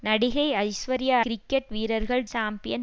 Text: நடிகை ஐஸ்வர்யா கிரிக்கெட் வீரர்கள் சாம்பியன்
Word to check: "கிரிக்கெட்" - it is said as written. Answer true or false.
true